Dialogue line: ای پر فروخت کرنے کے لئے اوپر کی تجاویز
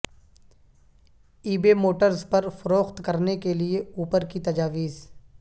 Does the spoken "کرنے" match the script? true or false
true